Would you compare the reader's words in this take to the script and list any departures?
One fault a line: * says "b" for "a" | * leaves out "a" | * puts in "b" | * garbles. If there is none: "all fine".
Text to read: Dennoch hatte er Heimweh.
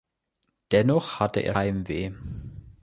all fine